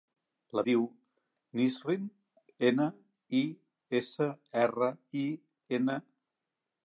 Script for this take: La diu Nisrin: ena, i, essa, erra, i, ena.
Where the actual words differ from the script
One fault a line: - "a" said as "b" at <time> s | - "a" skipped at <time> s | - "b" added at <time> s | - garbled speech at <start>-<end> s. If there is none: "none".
none